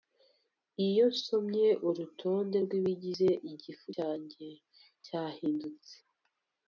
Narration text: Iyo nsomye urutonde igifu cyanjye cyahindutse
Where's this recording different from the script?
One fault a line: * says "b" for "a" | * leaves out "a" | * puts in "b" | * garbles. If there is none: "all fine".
* puts in "rwibigize"